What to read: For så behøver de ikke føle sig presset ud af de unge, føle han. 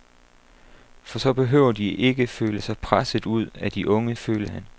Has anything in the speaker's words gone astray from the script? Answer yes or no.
no